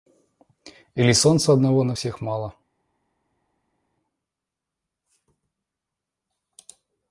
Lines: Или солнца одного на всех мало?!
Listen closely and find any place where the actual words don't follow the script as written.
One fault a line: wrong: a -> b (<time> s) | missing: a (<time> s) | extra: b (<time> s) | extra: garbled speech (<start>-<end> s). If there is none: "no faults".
no faults